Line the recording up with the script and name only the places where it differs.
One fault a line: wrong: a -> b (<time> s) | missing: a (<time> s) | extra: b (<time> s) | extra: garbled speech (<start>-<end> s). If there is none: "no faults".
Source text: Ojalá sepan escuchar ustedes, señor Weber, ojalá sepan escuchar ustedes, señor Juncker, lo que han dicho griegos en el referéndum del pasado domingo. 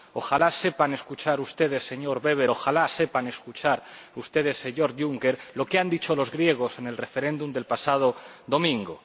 extra: los (6.1 s)